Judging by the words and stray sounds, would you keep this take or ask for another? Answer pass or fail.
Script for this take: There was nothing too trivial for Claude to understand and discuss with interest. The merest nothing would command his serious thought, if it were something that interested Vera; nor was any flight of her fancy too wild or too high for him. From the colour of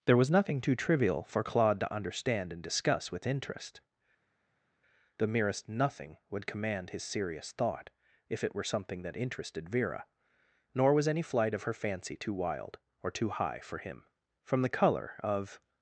pass